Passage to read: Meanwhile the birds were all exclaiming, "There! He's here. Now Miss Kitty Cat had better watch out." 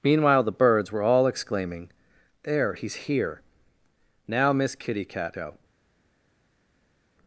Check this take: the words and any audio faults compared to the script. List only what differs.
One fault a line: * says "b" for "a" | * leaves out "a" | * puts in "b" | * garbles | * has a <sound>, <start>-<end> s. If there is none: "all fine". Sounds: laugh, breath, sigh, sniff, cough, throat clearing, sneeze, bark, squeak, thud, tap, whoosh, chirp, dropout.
* leaves out "had better watch"